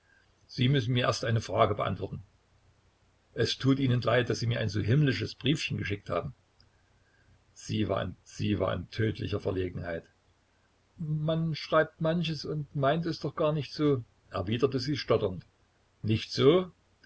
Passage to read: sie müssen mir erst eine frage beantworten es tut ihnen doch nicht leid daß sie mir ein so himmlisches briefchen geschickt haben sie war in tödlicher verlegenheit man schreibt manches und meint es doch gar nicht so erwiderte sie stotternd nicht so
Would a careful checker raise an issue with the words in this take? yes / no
yes